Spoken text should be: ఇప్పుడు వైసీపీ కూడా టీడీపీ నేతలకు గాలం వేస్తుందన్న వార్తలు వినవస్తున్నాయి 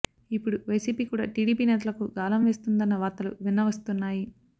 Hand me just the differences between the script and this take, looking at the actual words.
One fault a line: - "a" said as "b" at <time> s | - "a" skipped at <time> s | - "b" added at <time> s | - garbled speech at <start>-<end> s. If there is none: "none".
none